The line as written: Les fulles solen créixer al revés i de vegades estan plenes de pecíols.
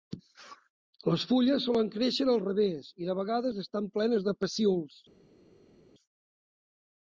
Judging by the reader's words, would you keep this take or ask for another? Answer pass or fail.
pass